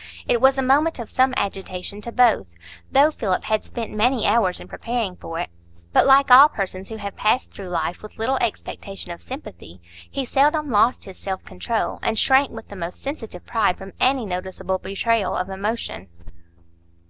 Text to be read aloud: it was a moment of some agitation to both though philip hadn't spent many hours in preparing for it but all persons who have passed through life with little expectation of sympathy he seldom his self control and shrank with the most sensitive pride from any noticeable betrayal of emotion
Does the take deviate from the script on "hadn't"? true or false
true